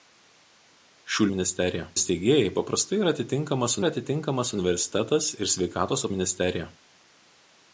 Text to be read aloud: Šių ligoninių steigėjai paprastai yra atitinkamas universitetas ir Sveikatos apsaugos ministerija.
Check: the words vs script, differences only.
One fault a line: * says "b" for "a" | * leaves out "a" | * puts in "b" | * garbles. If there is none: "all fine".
* says "ministerija" for "ligoninių"
* puts in "yra atitinkamas"
* leaves out "apsaugos"